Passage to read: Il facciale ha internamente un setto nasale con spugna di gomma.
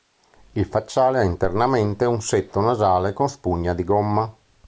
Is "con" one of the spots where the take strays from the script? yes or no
no